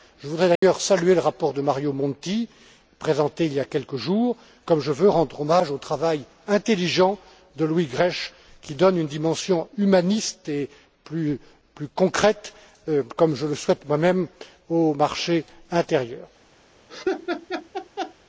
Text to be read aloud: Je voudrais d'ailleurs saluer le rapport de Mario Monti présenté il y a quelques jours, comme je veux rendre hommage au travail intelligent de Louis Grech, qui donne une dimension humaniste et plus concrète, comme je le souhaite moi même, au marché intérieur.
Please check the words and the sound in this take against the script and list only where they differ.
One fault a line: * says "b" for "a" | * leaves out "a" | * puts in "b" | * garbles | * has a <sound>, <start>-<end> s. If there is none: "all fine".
* has a dropout, 0.6-0.6 s
* has a laugh, 16.9-18.1 s